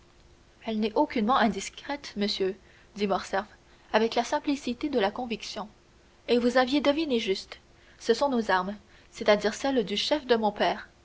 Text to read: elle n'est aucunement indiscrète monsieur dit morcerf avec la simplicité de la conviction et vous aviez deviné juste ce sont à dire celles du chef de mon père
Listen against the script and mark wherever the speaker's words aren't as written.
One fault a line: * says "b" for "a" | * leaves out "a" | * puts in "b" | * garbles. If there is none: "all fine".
* puts in "nos armes c'est"